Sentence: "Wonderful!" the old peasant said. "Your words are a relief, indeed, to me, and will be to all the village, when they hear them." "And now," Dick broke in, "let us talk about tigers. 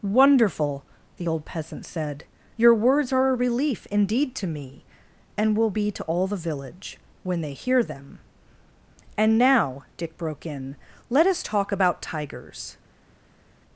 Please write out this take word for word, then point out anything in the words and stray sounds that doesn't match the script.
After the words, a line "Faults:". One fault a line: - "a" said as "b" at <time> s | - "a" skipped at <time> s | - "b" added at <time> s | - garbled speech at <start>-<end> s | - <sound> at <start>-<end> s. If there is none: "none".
"Wonderful!" the old peasant said. "Your words are a relief, indeed, to me, and will be to all the village, when they hear them." "And now," Dick broke in, "let us talk about tigers.
Faults:
none